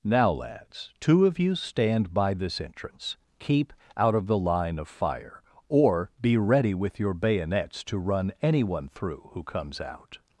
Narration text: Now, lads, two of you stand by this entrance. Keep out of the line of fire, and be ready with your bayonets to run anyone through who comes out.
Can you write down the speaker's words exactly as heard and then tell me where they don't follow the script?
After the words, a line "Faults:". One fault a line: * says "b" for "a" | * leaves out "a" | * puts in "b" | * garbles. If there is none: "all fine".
Now, lads, two of you stand by this entrance. Keep out of the line of fire, or be ready with your bayonets to run anyone through who comes out.
Faults:
* says "or" for "and"